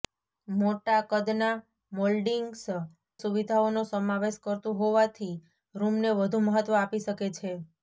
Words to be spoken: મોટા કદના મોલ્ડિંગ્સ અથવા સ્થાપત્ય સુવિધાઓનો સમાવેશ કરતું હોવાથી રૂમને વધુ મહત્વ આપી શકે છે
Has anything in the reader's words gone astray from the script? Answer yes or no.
yes